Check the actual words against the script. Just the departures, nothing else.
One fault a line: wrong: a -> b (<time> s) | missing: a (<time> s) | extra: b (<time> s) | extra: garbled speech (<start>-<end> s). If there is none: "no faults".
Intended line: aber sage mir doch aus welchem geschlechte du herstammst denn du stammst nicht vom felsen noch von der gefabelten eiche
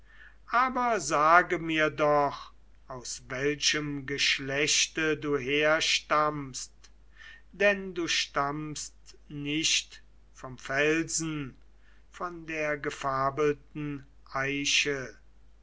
missing: noch (11.6 s)